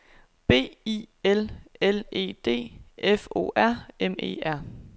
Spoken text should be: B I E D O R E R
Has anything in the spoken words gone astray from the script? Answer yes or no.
yes